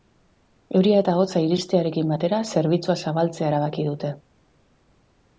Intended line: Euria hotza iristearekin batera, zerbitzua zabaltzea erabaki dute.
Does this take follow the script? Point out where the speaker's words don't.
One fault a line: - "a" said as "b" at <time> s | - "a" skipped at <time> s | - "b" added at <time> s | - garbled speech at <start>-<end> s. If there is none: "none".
- "eta" added at 1.0 s